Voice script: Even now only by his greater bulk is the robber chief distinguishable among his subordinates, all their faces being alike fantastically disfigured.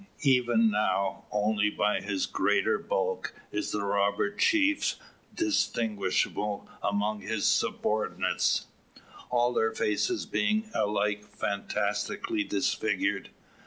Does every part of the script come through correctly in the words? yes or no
yes